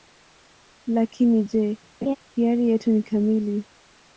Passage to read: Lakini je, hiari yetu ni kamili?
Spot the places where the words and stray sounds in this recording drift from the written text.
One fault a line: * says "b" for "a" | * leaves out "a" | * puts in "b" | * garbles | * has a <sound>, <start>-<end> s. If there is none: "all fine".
* has a laugh, 2.0-2.2 s